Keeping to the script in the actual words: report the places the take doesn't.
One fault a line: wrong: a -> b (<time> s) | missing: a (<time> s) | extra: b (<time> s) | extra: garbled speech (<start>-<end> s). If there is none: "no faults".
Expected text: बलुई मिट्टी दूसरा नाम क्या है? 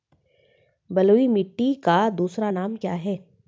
extra: का (1.7 s)